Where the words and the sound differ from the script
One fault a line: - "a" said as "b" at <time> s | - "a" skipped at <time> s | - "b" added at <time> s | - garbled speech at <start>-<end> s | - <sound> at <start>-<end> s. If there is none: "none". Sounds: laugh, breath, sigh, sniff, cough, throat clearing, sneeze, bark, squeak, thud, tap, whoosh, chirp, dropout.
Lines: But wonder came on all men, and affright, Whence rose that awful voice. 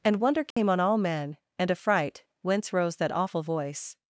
- "But" said as "And" at 0.0 s
- dropout at 0.5-0.6 s